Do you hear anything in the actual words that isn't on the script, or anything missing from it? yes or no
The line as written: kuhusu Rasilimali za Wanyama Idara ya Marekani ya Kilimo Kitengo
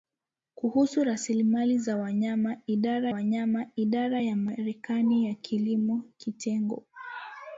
yes